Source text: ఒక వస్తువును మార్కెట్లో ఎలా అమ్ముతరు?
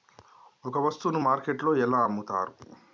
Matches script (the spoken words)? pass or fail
pass